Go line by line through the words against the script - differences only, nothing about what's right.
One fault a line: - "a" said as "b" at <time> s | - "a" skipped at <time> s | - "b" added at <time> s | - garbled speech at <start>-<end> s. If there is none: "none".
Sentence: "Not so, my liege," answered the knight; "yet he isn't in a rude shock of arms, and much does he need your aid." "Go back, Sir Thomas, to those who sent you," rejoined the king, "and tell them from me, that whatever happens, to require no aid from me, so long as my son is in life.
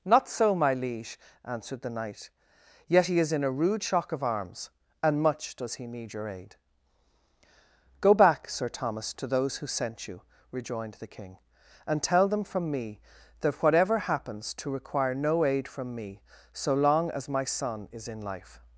- "isn't" said as "is" at 3.2 s